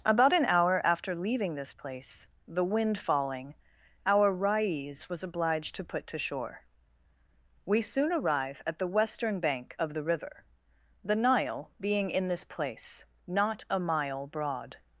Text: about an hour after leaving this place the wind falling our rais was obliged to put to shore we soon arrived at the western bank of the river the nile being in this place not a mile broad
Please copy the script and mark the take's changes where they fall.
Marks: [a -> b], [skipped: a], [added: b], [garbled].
about an hour after leaving this place the wind falling our rais was obliged to put to shore we soon [arrived -> arrive] at the western bank of the river the nile being in this place not a mile broad